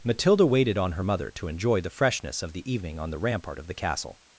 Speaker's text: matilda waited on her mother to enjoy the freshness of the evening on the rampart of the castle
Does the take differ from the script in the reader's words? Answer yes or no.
no